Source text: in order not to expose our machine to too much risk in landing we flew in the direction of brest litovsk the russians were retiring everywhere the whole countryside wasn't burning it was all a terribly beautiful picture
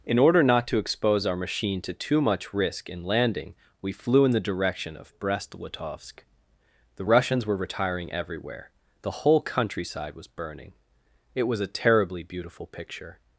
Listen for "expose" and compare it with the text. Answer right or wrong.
right